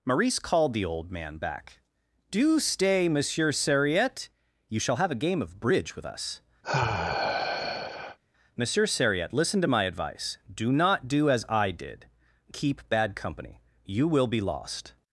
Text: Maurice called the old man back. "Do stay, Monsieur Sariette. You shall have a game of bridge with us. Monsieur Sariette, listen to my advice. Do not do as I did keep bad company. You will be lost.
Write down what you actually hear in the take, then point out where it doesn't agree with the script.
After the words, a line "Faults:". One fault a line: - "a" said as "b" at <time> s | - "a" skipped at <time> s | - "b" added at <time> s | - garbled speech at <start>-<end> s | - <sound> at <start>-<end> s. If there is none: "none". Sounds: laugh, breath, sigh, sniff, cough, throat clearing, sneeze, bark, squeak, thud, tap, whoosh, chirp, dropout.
Maurice called the old man back. "Do stay, Monsieur Sariette. You shall have a game of bridge with us. Monsieur Sariette, listen to my advice. Do not do as I did keep bad company. You will be lost.
Faults:
- sigh at 6.6-8.2 s